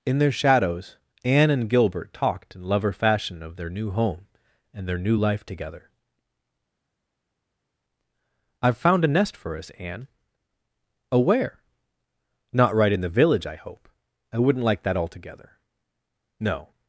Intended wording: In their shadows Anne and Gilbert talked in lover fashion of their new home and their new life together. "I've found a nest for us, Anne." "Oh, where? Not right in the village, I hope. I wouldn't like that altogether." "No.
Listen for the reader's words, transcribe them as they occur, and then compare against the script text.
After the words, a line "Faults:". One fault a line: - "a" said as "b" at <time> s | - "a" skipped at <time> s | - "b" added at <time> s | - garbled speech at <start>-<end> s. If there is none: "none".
In their shadows Anne and Gilbert talked in lover fashion of their new home and their new life together. "I've found a nest for us, Anne." "Oh, where? Not right in the village, I hope. I wouldn't like that altogether." "No.
Faults:
none